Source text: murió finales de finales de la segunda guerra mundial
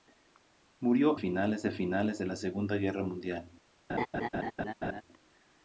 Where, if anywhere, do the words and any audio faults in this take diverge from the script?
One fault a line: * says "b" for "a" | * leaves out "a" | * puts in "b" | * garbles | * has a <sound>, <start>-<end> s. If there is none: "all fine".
* has a laugh, 3.9-5.0 s